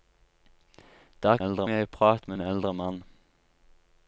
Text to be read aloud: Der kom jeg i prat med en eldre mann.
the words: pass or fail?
fail